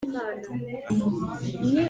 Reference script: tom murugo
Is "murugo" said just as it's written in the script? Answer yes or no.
yes